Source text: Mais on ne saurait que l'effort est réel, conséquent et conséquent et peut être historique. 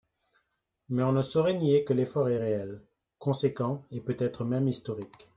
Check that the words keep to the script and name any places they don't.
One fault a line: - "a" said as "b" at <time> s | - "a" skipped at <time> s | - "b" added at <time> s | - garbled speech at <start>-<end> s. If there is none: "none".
- "nier" added at 1.5 s
- "conséquent et" skipped at 4.0 s
- "même" added at 4.4 s